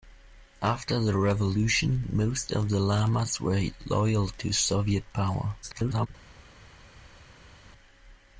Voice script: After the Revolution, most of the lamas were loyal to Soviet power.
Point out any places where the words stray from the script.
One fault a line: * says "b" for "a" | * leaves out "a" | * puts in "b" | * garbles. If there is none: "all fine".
* garbles